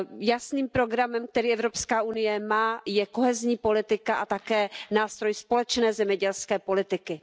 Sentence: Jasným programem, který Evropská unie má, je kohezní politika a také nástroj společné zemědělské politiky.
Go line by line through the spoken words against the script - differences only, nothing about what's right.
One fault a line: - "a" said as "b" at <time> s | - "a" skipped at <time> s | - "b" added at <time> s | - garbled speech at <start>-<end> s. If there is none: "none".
none